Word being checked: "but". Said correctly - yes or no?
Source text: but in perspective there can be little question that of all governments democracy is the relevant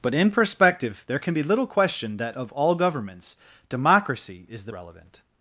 yes